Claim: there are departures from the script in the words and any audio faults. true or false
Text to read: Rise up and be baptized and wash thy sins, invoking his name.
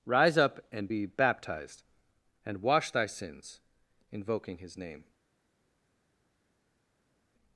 false